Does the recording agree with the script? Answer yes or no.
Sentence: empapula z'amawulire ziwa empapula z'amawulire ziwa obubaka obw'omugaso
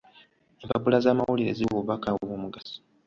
no